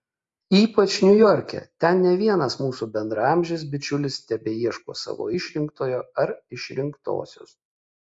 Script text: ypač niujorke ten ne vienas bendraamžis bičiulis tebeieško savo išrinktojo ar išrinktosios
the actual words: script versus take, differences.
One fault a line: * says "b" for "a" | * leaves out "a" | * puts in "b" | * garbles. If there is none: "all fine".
* puts in "mūsų"